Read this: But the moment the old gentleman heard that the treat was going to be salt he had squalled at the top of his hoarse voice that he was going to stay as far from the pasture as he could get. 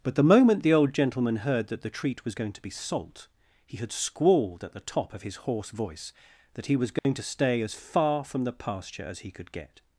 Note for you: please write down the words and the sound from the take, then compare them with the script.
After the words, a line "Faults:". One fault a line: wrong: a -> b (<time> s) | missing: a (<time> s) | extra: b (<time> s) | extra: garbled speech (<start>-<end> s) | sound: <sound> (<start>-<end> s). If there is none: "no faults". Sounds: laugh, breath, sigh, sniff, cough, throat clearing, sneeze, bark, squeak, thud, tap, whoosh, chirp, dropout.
But the moment the old gentleman heard that the treat was going to be salt he had squalled at the top of his hoarse voice that he was going to stay as far from the pasture as he could get.
Faults:
sound: dropout (7.0-7.0 s)